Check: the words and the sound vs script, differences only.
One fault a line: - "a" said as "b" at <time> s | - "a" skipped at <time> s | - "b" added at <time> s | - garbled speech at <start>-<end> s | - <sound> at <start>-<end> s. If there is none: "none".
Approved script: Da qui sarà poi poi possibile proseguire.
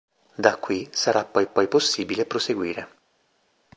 none